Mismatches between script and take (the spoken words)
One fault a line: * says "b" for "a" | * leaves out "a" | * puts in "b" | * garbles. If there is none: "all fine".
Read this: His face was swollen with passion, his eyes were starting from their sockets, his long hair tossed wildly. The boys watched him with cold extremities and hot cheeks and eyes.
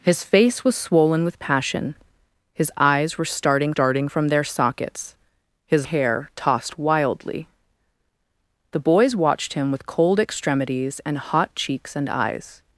* puts in "starting"
* leaves out "long"